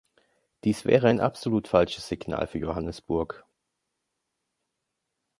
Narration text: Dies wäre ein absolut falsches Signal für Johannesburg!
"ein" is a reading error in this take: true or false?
false